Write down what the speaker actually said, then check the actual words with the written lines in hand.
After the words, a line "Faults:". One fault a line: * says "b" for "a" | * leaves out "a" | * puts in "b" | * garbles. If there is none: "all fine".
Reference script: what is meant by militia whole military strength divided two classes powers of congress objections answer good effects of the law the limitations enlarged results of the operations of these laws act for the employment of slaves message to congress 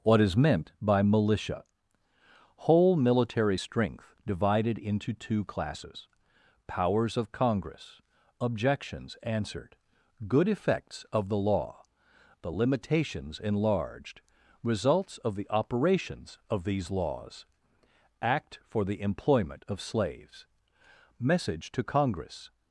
what is meant by militia whole military strength divided into two classes powers of congress objections answered good effects of the law the limitations enlarged results of the operations of these laws act for the employment of slaves message to congress
Faults:
* puts in "into"
* says "answered" for "answer"